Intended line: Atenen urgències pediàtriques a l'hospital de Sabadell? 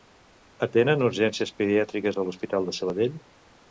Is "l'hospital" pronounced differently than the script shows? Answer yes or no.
no